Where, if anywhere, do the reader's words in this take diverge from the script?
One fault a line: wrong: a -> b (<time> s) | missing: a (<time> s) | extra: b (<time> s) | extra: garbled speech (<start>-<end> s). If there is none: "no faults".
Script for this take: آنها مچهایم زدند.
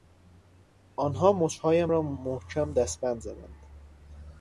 extra: را محکم دستبند (1.9 s)